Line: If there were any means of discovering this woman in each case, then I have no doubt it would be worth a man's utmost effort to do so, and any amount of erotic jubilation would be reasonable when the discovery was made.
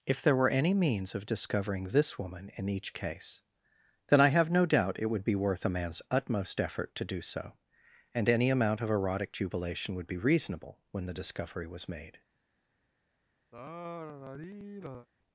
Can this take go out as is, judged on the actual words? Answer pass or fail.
pass